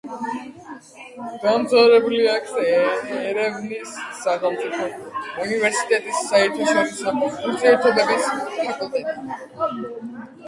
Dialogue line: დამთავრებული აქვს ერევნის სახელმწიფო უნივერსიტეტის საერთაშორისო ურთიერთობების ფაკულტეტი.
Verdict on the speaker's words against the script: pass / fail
pass